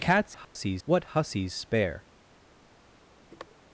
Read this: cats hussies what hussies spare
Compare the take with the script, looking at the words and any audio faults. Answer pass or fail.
fail